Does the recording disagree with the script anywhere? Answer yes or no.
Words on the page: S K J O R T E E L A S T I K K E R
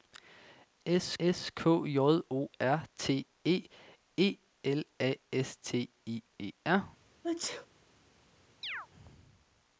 yes